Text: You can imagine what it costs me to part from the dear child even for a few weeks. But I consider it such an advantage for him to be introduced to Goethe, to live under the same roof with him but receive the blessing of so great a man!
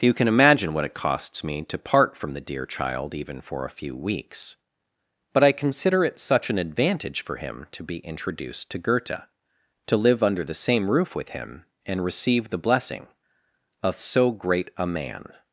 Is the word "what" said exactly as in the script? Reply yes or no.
yes